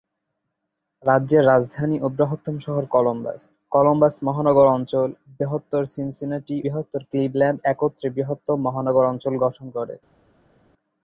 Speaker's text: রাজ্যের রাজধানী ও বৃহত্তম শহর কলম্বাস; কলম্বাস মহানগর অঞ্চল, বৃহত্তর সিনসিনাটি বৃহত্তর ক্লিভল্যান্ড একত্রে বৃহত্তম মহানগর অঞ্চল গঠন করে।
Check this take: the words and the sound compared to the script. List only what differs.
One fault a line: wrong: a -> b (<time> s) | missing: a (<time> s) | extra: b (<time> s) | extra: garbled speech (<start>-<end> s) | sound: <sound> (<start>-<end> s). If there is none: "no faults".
no faults